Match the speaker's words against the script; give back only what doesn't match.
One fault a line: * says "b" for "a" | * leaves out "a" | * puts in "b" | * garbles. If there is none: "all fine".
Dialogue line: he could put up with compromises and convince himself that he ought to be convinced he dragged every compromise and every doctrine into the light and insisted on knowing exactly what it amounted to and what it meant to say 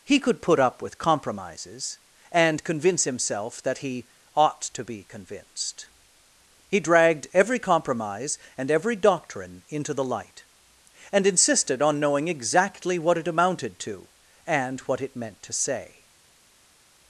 all fine